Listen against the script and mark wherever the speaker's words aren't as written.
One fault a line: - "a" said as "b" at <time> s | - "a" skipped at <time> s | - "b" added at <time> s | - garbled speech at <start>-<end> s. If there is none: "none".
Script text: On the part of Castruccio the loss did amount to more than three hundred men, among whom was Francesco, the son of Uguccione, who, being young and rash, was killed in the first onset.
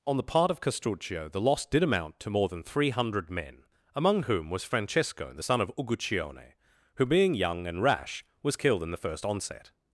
none